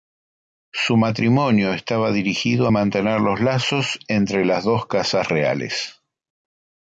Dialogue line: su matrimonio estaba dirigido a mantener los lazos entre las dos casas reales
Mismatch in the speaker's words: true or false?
false